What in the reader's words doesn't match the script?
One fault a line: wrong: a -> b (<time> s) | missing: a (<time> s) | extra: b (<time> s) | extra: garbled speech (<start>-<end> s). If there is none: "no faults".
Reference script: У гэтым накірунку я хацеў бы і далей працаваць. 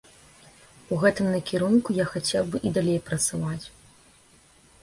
no faults